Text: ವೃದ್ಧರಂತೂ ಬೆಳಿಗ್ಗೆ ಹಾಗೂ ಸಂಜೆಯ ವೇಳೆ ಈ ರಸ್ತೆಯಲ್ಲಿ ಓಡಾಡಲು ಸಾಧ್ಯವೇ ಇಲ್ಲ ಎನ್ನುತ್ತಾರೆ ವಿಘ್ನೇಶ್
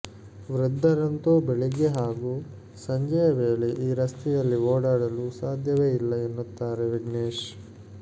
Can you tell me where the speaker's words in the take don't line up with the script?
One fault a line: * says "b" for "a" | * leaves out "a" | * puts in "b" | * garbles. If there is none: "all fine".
all fine